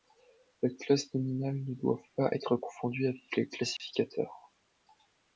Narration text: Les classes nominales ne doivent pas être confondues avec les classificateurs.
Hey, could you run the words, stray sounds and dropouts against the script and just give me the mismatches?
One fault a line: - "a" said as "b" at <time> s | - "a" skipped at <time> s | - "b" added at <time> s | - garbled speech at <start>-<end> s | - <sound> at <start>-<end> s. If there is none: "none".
- dropout at 3.8-3.8 s